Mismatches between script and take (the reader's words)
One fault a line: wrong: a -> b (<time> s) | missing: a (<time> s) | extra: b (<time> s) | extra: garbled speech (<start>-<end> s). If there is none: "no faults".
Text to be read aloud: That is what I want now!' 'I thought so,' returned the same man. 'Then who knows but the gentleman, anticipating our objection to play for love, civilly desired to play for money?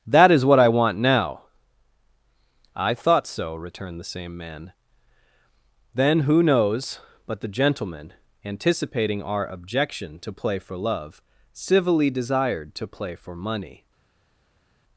no faults